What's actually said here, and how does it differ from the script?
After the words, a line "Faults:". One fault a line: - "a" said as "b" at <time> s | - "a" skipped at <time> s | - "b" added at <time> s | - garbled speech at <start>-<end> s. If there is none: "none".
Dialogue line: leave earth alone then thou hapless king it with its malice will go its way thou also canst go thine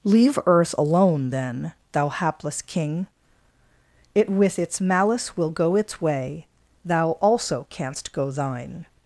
leave earth alone then thou hapless king it with its malice will go its way thou also canst go thine
Faults:
none